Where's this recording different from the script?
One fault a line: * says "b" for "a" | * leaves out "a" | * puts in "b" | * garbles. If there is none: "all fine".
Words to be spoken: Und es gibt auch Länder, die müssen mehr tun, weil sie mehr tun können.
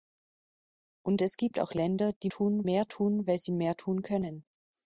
* says "tun" for "müssen"